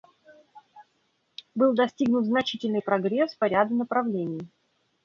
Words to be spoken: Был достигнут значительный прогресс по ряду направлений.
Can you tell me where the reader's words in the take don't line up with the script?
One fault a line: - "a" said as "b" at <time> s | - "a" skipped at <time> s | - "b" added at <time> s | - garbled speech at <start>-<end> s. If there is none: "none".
none